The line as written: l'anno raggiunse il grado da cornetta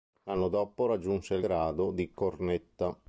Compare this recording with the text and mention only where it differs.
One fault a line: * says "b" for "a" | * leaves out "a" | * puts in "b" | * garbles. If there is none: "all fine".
* puts in "dopo"
* says "di" for "da"